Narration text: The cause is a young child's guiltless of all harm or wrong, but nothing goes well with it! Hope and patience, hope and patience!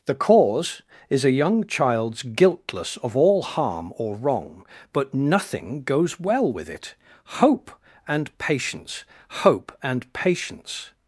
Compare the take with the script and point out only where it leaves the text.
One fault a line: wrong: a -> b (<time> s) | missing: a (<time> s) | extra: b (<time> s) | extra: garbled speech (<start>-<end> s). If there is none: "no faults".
no faults